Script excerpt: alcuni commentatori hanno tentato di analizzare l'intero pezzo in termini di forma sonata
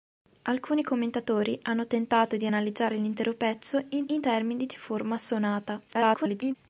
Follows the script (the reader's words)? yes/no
no